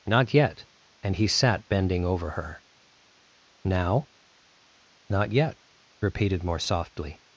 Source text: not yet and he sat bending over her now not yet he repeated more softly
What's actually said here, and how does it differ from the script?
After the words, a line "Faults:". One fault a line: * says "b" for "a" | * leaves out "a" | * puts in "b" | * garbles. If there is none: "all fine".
not yet and he sat bending over her now not yet repeated more softly
Faults:
* leaves out "he"